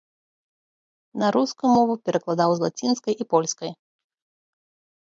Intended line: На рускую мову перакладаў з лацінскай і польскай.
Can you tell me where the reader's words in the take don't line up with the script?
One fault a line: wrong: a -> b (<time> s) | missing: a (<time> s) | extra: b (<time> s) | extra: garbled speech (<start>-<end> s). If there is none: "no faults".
no faults